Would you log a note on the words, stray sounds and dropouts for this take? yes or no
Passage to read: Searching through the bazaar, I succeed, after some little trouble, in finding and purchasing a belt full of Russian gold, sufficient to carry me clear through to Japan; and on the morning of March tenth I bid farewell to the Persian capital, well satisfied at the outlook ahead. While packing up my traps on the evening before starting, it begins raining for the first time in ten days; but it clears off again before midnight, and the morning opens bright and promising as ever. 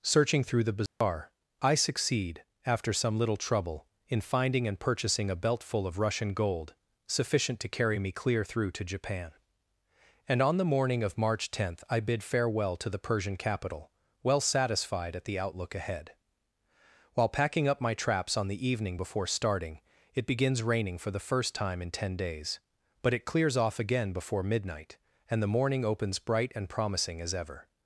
yes